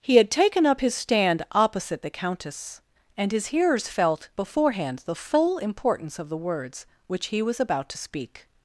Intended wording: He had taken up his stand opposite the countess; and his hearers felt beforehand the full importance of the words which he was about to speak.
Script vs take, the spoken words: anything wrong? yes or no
no